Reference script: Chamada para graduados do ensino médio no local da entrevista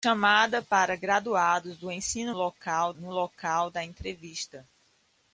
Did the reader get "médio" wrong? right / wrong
wrong